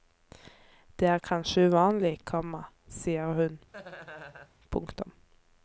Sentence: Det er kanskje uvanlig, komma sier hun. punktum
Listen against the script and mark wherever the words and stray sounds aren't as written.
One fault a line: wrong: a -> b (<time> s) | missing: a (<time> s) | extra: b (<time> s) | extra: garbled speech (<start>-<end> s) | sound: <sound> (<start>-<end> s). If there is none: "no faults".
sound: laugh (3.7-4.5 s)